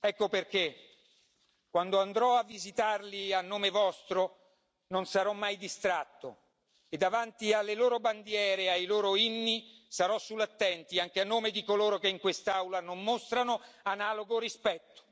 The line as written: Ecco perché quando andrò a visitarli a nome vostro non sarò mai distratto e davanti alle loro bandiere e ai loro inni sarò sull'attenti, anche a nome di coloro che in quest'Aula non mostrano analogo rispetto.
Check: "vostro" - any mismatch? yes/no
no